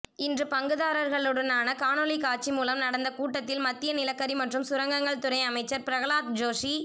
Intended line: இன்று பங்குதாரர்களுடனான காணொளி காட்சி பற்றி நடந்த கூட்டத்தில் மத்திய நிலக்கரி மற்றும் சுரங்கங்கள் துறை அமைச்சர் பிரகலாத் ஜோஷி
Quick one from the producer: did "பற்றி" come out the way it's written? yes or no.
no